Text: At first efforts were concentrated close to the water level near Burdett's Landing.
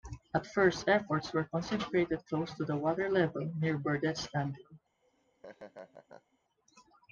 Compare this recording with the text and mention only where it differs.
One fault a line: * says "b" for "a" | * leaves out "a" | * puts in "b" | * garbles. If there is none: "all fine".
all fine